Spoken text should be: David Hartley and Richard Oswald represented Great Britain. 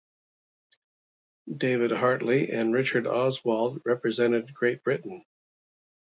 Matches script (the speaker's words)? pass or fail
pass